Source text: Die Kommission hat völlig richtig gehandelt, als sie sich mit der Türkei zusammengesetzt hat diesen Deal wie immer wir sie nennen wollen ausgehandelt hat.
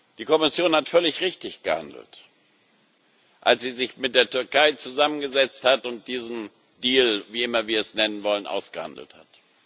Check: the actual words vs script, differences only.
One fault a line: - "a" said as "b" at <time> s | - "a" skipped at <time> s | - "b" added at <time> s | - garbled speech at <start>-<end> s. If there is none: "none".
- "und" added at 5.9 s
- "sie" said as "es" at 7.8 s